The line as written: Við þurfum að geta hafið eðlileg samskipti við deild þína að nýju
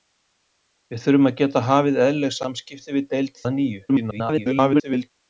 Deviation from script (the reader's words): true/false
true